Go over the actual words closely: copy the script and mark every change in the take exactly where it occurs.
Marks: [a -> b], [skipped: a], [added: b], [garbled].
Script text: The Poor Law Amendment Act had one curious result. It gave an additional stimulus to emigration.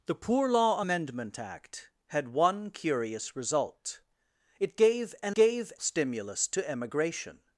The Poor Law Amendment Act had one curious result. It gave an [additional -> gave] stimulus to emigration.